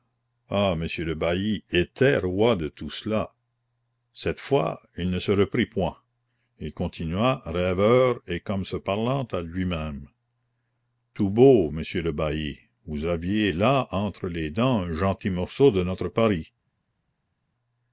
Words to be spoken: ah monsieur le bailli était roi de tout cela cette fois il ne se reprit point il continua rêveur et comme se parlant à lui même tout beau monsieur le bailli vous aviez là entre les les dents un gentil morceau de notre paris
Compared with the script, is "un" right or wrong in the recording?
right